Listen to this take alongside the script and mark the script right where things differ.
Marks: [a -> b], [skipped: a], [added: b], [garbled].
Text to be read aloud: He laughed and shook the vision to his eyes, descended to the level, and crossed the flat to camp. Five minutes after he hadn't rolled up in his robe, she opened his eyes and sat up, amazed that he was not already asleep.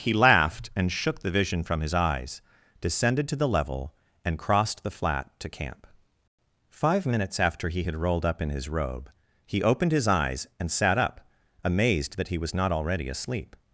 He laughed and shook the vision [to -> from] his eyes, descended to the level, and crossed the flat to camp. Five minutes after he [hadn't -> had] rolled up in his robe, [she -> he] opened his eyes and sat up, amazed that he was not already asleep.